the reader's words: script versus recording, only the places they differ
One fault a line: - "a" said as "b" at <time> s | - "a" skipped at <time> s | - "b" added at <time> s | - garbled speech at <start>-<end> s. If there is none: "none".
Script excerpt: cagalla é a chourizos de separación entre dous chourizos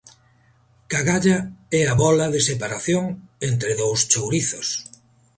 - "chourizos" said as "bóla" at 2.0 s